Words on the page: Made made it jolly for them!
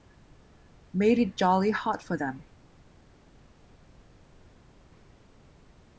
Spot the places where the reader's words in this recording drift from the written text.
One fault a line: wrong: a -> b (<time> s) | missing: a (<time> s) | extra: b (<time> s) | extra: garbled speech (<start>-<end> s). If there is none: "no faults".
missing: made (1.2 s)
extra: hot (1.7 s)